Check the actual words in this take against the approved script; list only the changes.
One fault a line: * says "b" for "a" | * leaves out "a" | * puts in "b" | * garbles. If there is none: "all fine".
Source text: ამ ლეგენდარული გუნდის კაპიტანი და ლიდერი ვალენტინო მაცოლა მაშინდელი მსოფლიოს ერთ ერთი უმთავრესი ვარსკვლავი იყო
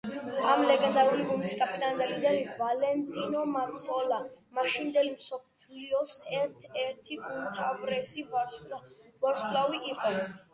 all fine